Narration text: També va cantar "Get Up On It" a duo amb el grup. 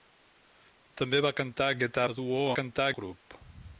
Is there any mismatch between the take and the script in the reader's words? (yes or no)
yes